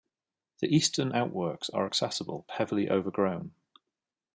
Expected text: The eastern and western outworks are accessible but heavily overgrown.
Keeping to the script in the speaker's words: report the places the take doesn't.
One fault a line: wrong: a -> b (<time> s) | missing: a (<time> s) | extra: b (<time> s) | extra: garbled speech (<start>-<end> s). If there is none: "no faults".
missing: and western (1.1 s)
missing: but (2.5 s)